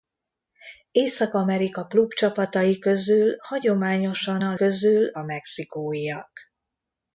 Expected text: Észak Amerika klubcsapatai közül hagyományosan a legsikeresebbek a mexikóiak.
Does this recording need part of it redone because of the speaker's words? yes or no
yes